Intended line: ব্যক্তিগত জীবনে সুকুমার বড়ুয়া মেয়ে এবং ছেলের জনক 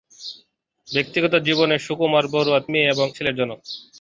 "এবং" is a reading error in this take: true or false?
false